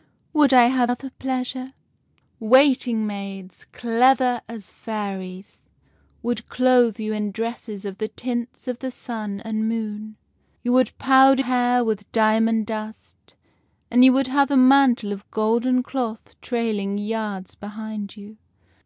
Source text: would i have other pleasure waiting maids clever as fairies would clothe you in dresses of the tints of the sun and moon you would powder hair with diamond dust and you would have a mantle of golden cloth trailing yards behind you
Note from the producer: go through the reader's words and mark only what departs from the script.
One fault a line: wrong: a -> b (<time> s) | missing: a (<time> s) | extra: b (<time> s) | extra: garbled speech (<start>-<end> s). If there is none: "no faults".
no faults